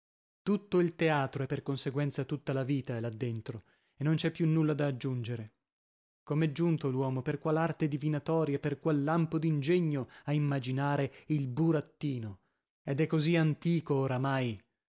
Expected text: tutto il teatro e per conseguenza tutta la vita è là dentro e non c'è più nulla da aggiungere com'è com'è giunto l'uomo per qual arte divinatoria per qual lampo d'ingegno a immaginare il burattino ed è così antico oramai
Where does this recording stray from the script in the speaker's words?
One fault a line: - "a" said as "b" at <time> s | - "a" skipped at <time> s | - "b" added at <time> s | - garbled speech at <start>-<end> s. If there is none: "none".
- "com'è" skipped at 6.5 s